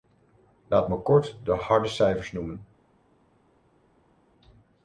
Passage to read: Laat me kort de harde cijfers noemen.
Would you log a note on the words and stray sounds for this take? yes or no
no